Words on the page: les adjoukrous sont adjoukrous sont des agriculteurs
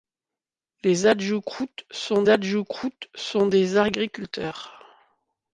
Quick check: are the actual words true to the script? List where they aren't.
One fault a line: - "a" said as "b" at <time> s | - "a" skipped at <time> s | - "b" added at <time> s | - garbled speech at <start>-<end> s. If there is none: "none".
none